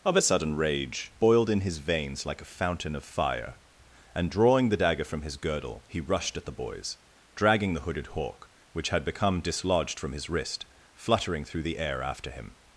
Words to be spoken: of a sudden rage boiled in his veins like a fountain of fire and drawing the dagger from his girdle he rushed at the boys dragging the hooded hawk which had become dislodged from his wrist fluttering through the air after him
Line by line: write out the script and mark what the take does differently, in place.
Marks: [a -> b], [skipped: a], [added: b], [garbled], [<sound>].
of a sudden rage boiled in his veins like a fountain of fire and drawing the dagger from his girdle he rushed at the boys dragging the hooded hawk which had become dislodged from his wrist fluttering through the air after him